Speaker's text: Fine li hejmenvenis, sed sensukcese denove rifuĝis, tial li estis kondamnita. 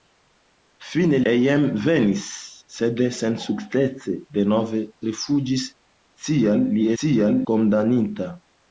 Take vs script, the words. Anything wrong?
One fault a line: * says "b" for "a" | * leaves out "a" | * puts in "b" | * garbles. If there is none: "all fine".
* leaves out "li"
* says "tial" for "estis"